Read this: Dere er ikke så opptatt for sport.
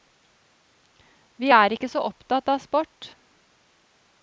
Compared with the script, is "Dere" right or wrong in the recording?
wrong